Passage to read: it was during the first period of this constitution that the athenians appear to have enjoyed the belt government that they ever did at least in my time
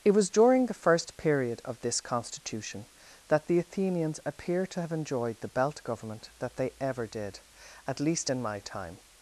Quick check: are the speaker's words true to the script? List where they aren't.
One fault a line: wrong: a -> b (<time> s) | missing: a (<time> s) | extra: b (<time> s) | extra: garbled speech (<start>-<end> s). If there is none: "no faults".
no faults